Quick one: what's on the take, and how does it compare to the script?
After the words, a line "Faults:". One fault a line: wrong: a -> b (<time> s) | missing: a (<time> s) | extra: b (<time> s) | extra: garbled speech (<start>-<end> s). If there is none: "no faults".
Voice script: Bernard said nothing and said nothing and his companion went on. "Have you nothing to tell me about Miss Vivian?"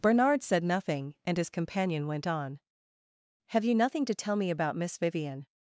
Bernard said nothing and his companion went on. "Have you nothing to tell me about Miss Vivian?"
Faults:
missing: said nothing and (1.4 s)